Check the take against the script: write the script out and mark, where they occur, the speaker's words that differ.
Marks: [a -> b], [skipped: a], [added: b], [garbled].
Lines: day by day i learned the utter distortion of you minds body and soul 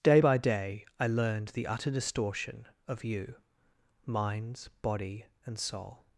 day by day i learned the utter distortion of you minds body and soul